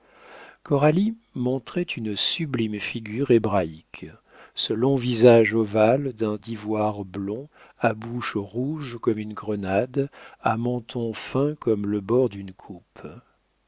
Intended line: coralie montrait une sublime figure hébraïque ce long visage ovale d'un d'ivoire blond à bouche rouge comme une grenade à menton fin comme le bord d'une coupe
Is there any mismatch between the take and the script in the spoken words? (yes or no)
no